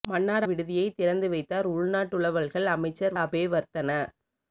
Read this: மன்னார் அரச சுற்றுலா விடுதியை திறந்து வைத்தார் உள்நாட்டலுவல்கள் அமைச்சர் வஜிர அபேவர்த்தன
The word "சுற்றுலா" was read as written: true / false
false